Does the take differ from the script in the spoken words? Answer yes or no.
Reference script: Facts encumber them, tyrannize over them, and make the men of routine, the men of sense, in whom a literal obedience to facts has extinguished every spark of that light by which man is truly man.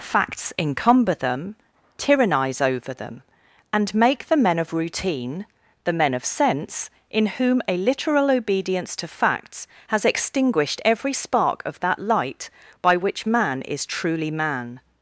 no